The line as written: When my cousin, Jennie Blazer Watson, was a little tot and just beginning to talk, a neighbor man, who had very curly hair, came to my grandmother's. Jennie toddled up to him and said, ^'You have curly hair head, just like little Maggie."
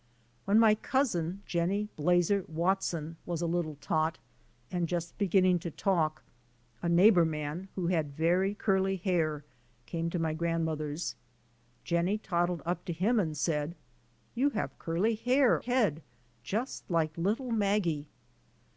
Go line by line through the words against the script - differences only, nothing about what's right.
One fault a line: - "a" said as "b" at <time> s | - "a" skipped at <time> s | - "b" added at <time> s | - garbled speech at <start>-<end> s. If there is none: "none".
none